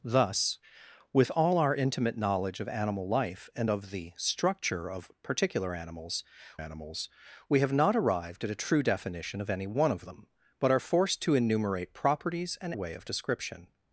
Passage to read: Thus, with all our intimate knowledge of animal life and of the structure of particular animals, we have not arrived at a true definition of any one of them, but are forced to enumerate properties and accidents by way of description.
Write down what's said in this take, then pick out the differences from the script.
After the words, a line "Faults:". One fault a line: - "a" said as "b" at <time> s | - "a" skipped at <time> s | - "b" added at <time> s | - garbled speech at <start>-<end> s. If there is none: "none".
Thus, with all our intimate knowledge of animal life and of the structure of particular animals animals, we have not arrived at a true definition of any one of them, but are forced to enumerate properties and way of description.
Faults:
- "animals" added at 6.6 s
- "accidents by" skipped at 12.7 s